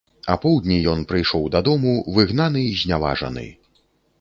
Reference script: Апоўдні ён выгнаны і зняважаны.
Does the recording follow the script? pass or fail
fail